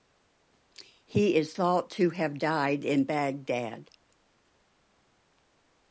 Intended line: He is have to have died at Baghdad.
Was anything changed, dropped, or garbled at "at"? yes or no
yes